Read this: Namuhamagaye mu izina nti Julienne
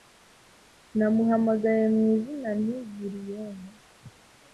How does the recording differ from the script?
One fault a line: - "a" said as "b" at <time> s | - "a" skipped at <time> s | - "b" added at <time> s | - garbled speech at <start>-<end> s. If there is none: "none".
none